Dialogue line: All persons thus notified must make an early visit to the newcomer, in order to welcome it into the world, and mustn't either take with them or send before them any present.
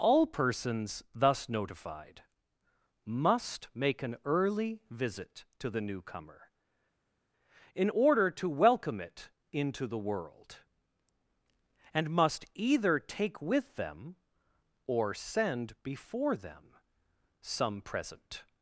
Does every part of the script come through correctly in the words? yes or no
no